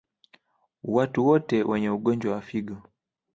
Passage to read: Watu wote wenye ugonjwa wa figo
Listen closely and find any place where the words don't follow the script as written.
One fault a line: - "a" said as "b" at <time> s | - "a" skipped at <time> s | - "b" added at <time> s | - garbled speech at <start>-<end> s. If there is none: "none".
none